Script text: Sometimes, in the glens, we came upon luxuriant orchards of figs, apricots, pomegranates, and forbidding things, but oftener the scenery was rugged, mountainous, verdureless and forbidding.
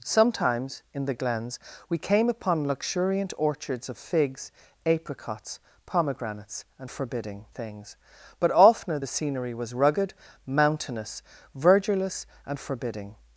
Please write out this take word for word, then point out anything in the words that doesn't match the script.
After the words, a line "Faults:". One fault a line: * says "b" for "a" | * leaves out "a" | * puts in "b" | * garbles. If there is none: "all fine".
Sometimes, in the glens, we came upon luxuriant orchards of figs, apricots, pomegranates, and forbidding things, but oftener the scenery was rugged, mountainous, verdureless and forbidding.
Faults:
all fine